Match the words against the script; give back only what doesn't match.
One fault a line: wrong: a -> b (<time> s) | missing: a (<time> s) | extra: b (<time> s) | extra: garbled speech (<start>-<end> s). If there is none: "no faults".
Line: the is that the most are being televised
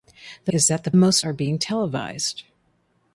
no faults